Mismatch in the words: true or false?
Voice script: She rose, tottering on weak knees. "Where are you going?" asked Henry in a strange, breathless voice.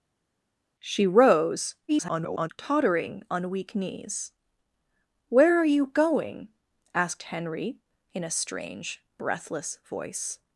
true